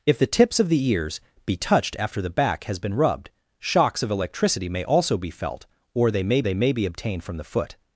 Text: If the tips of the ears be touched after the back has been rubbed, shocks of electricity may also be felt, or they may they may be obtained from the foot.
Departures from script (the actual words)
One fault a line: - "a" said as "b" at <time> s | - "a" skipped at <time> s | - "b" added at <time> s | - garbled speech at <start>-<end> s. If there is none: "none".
none